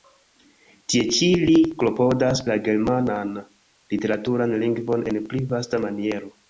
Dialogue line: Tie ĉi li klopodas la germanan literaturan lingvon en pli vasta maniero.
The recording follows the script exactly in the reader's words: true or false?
true